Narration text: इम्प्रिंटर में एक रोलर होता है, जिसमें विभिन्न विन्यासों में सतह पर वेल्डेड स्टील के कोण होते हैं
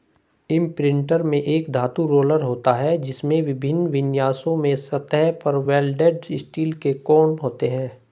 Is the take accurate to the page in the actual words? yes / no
no